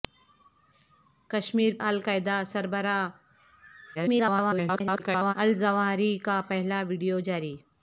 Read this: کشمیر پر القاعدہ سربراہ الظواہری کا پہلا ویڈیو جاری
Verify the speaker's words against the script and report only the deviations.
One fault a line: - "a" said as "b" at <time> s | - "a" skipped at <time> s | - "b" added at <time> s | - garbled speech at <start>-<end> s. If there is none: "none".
- "پر" skipped at 1.7 s
- garbled speech at 3.9-5.3 s